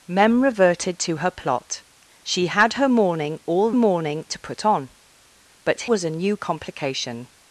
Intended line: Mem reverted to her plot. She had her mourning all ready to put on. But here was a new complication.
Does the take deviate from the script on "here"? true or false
true